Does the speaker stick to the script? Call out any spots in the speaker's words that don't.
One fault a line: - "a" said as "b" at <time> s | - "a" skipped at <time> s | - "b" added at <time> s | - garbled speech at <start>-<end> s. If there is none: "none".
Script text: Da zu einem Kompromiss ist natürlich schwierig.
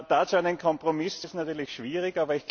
none